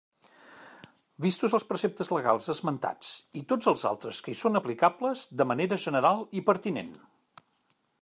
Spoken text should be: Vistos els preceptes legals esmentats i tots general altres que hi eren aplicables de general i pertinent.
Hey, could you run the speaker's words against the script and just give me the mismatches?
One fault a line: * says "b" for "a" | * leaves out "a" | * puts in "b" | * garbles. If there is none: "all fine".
* says "els" for "general"
* says "són" for "eren"
* puts in "manera"